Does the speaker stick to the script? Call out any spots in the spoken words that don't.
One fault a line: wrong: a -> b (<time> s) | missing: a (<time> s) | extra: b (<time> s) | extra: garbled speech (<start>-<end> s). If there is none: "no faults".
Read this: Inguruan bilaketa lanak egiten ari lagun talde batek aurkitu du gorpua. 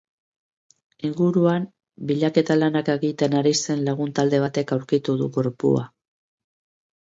extra: zen (3.6 s)